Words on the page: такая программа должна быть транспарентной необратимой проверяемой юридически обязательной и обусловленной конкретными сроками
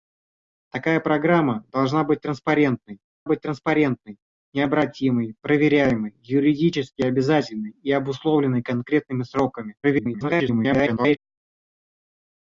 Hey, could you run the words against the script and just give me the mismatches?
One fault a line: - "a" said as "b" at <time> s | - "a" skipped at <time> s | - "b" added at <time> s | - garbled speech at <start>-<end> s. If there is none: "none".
- "быть транспарентной" added at 3.2 s
- garbled speech at 9.8-11.2 s